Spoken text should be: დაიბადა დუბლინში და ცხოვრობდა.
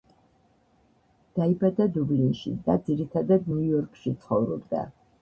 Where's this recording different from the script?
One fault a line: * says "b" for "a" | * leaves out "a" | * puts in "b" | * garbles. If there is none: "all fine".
* puts in "ძირითადად ნიუ იორკში"